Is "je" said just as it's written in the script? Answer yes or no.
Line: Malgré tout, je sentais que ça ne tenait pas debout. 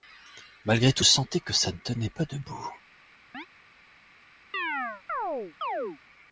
no